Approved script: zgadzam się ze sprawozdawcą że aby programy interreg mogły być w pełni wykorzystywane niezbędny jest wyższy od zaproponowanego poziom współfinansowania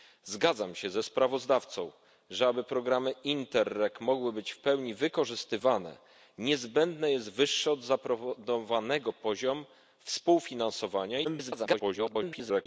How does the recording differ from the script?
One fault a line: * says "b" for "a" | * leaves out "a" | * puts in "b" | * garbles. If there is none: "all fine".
* garbles